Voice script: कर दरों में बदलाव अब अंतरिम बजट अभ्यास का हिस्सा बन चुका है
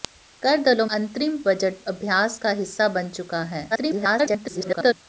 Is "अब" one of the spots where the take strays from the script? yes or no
yes